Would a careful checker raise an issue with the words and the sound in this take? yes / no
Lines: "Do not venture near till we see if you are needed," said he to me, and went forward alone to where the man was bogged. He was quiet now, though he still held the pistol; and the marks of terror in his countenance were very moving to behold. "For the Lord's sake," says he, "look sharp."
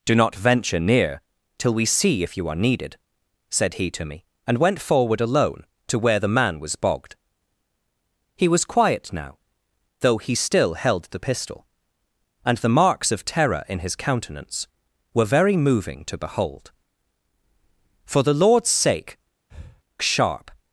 yes